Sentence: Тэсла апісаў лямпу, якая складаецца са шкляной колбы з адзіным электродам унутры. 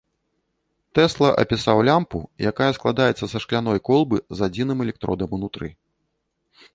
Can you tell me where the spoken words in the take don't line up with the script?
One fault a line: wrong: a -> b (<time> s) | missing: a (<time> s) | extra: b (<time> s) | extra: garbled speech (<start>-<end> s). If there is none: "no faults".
no faults